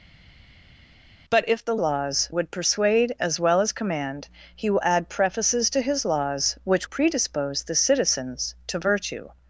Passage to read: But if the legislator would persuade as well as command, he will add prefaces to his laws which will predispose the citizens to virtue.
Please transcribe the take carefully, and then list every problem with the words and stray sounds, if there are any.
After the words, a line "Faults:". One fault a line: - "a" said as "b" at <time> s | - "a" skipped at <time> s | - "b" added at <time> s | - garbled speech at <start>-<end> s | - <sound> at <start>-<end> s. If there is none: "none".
But if the laws would persuade as well as command, he will add prefaces to his laws which predispose the citizens to virtue.
Faults:
- "legislator" said as "laws" at 1.8 s
- "will" skipped at 6.9 s